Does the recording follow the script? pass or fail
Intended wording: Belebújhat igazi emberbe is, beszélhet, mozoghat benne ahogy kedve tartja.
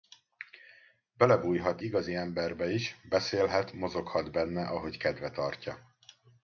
pass